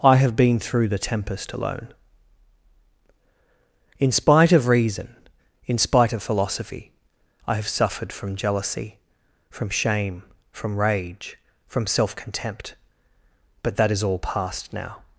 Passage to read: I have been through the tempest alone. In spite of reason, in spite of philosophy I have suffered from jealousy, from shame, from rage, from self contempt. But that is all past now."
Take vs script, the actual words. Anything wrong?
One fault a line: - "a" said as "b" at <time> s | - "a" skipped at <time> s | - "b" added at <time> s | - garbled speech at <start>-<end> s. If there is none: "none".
none